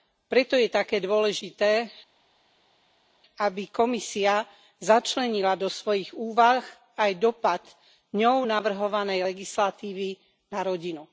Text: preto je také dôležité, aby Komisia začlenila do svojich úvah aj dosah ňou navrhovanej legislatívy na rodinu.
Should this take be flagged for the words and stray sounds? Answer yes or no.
no